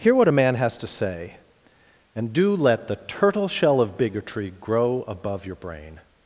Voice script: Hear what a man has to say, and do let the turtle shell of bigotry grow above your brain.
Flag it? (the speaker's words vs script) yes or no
no